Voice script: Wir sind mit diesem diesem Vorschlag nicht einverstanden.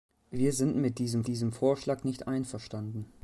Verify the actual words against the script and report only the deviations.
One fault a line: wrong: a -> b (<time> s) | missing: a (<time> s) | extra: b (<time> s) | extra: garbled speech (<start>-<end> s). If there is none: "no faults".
no faults